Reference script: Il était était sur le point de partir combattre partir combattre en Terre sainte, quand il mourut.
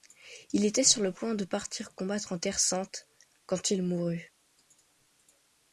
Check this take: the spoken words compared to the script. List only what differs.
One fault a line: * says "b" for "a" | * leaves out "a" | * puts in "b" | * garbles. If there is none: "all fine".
* leaves out "était"
* leaves out "partir combattre"